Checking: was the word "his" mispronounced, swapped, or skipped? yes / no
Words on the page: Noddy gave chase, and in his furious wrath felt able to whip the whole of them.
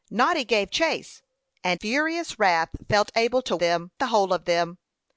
yes